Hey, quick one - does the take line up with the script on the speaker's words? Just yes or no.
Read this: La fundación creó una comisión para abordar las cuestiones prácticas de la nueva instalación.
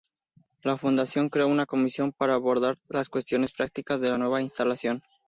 yes